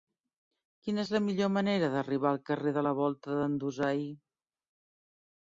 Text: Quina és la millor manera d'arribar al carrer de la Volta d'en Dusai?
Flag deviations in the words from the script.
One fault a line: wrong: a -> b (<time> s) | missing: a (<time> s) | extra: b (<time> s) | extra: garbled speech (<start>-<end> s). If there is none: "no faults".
no faults